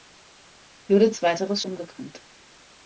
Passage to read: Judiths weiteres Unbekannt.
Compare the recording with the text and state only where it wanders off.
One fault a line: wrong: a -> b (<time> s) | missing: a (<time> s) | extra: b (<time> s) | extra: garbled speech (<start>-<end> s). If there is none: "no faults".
no faults